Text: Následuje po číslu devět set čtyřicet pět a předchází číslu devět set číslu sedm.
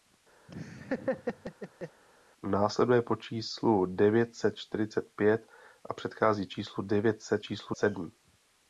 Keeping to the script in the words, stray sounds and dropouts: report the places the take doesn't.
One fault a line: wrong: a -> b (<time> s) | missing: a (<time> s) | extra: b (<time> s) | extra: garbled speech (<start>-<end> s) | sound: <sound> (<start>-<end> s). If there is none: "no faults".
sound: laugh (0.5-2.0 s)